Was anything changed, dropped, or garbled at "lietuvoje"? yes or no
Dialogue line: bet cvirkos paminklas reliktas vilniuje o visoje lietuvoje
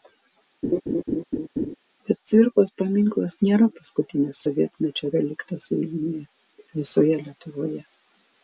no